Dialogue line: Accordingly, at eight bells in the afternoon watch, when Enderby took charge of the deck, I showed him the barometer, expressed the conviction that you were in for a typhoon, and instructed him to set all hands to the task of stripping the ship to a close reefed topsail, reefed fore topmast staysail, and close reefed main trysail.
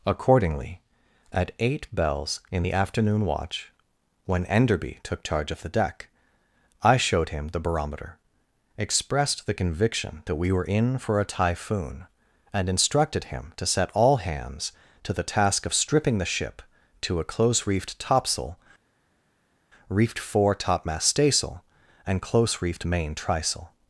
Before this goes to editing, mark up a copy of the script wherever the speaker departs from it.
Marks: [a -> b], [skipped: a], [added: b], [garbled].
Accordingly, at eight bells in the afternoon watch, when Enderby took charge of the deck, I showed him the barometer, expressed the conviction that [you -> we] were in for a typhoon, and instructed him to set all hands to the task of stripping the ship to a close reefed topsail, reefed fore topmast staysail, and close reefed main trysail.